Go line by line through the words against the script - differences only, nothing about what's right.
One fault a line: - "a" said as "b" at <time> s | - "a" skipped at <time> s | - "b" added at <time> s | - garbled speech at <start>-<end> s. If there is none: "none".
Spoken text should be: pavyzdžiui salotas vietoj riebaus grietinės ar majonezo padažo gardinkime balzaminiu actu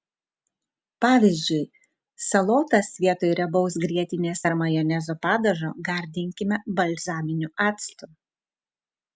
none